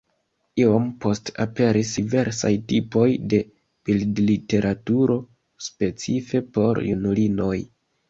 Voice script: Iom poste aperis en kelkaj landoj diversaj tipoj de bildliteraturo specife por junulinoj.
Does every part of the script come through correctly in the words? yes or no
no